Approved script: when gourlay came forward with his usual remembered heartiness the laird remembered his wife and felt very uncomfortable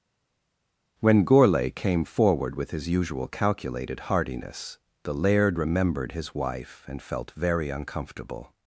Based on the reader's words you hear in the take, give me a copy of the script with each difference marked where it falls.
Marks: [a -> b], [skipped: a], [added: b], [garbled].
when gourlay came forward with his usual [remembered -> calculated] heartiness the laird remembered his wife and felt very uncomfortable